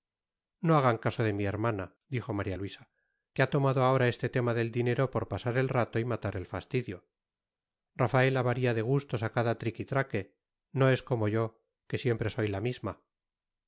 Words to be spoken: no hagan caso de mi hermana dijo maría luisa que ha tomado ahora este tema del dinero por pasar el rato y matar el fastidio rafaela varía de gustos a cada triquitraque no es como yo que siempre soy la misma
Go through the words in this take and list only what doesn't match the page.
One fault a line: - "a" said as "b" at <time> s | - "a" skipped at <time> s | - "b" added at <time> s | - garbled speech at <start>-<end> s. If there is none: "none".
none